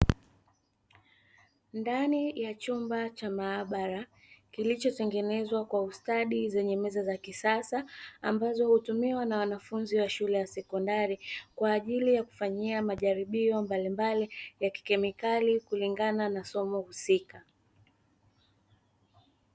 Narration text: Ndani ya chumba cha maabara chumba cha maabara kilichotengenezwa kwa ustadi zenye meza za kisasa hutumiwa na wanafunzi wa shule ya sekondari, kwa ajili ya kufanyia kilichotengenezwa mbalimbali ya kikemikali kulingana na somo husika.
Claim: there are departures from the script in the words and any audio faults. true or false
true